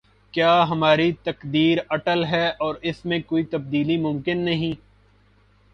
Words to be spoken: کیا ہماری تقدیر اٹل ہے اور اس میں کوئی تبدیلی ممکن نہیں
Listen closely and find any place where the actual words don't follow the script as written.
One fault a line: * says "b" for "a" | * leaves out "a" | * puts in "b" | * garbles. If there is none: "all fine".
all fine